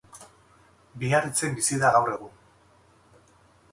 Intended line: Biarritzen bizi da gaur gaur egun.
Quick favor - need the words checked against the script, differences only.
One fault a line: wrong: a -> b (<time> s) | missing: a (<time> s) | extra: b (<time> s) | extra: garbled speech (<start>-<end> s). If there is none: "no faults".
missing: gaur (2.1 s)